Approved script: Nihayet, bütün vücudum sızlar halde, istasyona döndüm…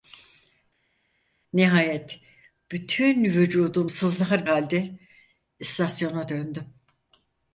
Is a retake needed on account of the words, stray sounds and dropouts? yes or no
no